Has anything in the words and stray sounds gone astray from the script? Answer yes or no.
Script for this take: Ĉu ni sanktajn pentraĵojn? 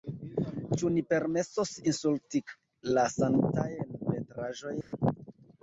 yes